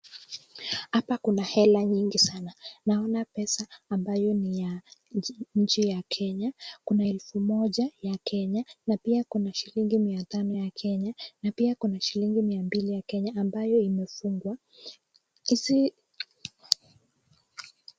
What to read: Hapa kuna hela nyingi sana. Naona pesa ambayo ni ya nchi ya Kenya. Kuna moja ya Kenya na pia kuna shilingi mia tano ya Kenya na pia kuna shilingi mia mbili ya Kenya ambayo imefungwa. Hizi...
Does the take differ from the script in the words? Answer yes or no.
yes